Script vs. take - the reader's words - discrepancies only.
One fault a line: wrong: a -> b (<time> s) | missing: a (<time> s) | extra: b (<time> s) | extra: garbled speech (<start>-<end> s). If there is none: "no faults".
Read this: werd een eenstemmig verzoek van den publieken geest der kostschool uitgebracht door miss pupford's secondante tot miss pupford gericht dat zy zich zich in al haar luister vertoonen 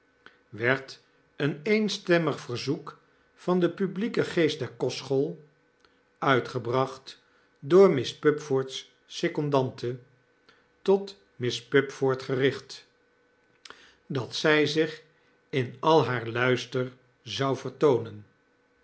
missing: zich (15.0 s)
extra: zou (17.2 s)